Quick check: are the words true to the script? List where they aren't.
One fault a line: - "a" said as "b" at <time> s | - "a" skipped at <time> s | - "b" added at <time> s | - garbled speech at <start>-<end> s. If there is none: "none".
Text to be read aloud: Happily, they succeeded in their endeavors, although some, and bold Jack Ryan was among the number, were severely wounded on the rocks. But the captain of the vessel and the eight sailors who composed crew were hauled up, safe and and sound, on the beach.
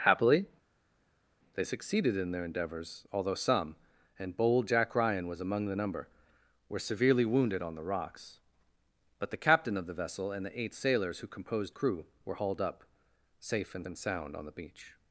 none